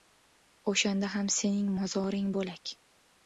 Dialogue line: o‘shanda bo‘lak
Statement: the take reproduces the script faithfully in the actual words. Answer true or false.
false